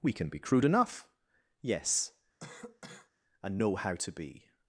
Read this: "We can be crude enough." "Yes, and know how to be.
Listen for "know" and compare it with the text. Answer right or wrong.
right